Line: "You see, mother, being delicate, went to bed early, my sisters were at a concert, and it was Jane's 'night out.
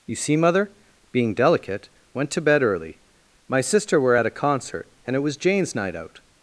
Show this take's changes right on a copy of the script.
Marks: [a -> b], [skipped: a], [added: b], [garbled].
"You see, mother, being delicate, went to bed early, my [sisters -> sister] were at a concert, and it was Jane's 'night out.